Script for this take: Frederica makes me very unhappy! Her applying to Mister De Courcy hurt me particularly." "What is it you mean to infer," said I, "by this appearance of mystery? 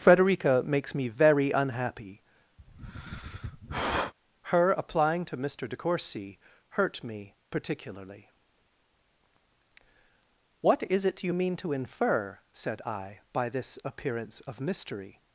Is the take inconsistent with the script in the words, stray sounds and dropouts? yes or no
yes